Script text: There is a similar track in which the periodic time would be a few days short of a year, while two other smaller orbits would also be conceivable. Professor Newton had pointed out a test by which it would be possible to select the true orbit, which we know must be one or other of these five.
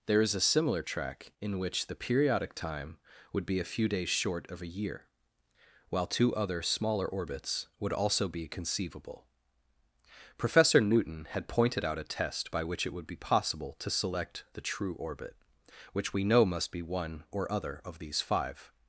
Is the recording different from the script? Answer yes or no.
no